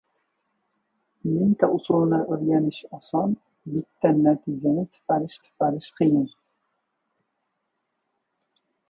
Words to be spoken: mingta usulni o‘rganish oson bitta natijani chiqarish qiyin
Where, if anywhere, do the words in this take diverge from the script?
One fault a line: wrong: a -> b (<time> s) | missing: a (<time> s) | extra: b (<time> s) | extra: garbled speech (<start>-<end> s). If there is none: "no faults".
extra: chiqarish (5.5 s)